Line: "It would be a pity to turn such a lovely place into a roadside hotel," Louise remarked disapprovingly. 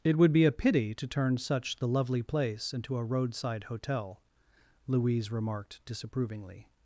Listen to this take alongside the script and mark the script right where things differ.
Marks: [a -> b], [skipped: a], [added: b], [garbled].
"It would be a pity to turn such [a -> the] lovely place into a roadside hotel," Louise remarked disapprovingly.